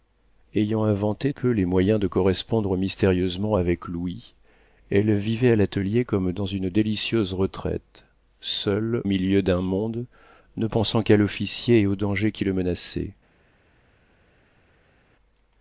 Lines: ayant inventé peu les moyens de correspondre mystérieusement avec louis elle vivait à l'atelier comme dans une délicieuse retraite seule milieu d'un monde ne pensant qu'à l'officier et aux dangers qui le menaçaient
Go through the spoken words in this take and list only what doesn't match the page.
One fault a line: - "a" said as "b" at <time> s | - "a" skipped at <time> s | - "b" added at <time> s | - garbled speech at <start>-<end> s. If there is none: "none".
none